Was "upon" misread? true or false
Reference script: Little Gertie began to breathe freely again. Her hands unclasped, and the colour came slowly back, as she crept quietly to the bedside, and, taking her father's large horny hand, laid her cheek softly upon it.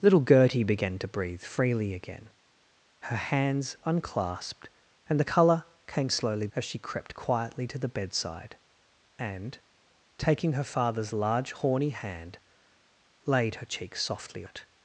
true